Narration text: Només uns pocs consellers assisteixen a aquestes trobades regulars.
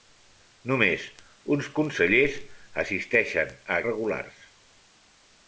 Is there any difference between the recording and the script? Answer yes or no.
yes